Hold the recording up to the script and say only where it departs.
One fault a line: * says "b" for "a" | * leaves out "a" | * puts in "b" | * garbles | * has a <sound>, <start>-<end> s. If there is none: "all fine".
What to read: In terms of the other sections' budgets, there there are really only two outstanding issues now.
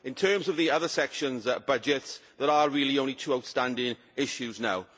* leaves out "there"